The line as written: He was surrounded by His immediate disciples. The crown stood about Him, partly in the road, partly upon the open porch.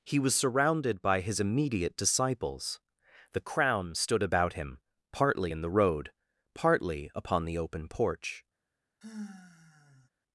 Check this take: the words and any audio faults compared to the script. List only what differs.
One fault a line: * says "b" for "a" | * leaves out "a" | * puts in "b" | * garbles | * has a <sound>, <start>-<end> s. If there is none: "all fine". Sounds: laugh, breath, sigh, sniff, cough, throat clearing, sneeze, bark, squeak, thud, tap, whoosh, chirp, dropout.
* has a sigh, 9.0-10.1 s